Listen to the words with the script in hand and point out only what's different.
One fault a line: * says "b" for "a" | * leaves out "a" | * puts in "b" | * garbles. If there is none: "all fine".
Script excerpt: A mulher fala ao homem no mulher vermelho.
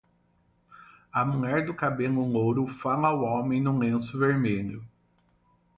* puts in "do cabelo louro"
* says "lenço" for "mulher"